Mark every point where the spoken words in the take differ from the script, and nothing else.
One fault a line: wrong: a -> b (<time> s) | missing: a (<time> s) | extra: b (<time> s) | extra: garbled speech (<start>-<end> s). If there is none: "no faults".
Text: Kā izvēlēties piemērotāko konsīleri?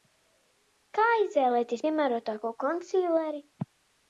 no faults